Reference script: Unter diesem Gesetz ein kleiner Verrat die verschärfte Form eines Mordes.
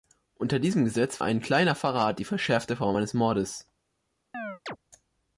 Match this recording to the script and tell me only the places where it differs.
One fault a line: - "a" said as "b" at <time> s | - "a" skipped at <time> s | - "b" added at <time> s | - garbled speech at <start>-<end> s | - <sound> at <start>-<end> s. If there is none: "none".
- chirp at 4.3-4.8 s